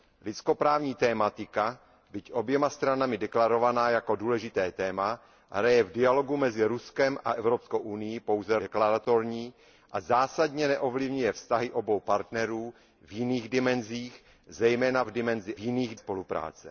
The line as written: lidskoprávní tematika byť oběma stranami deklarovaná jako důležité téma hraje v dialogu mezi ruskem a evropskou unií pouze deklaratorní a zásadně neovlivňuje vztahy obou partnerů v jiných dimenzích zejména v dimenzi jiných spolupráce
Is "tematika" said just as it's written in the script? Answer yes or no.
yes